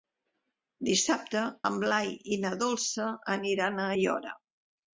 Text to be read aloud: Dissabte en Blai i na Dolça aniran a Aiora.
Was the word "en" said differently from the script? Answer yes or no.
no